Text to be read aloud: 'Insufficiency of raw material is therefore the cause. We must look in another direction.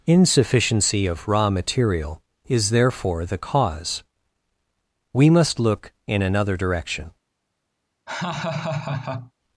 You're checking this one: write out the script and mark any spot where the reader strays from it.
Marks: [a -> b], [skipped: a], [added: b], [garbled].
'Insufficiency of raw material is therefore the cause. We must look in another direction.